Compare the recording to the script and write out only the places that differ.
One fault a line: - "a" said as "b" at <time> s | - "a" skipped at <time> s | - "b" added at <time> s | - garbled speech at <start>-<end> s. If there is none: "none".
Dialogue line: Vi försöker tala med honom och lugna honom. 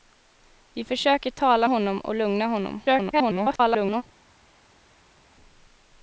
- "med" skipped at 1.7 s
- garbled speech at 2.8-4.0 s